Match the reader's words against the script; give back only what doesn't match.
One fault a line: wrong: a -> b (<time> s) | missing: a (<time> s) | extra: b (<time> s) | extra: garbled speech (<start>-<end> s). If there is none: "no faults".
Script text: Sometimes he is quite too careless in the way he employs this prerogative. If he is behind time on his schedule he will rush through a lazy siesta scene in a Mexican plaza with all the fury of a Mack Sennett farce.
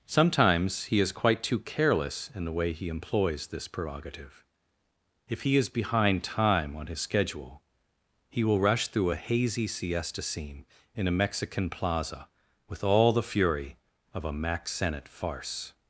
wrong: lazy -> hazy (9.1 s)